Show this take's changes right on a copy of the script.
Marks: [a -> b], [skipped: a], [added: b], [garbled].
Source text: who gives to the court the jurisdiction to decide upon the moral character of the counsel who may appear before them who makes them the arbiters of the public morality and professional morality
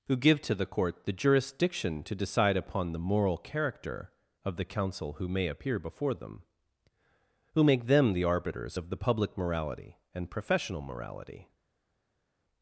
who [gives -> give] to the court the jurisdiction to decide upon the moral character of the counsel who may appear before them who [makes -> make] them the arbiters of the public morality and professional morality